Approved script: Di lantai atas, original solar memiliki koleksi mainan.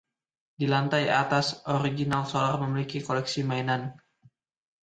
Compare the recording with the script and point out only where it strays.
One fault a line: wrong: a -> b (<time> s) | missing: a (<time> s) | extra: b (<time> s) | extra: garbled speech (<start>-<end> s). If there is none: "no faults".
no faults